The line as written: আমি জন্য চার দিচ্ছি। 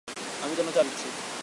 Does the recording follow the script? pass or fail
pass